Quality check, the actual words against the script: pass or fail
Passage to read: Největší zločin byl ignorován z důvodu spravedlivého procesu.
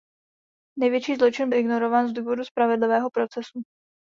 fail